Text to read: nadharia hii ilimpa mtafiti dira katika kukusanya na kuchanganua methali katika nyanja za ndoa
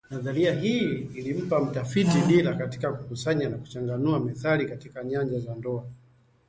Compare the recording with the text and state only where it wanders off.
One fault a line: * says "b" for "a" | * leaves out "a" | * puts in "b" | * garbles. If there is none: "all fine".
all fine